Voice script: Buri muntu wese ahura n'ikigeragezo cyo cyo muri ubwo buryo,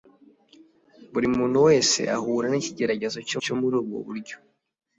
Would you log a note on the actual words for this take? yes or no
no